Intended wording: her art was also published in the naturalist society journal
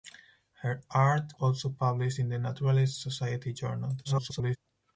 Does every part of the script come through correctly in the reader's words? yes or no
no